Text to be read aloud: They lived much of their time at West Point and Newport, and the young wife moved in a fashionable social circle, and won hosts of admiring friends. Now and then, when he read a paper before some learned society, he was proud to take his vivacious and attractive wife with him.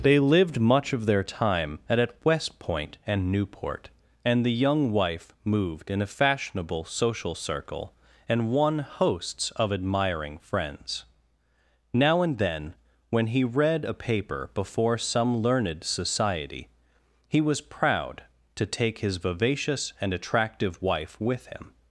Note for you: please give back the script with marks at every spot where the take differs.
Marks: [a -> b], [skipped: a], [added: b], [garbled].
They lived much of their time at [added: at] West Point and Newport, and the young wife moved in a fashionable social circle, and won hosts of admiring friends. Now and then, when he read a paper before some learned society, he was proud to take his vivacious and attractive wife with him.